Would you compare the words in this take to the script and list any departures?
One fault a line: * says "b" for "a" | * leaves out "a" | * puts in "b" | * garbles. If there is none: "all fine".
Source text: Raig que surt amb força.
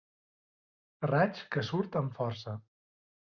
all fine